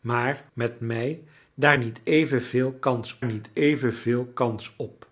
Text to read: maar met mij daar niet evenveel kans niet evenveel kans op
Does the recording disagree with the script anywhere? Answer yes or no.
no